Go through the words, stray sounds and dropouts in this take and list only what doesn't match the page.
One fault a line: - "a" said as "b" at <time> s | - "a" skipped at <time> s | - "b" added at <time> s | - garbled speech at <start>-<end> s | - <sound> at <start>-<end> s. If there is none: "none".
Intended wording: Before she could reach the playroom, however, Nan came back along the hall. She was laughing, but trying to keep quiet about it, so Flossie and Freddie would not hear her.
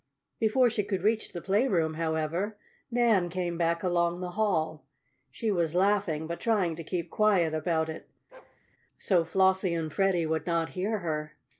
- bark at 8.3-8.6 s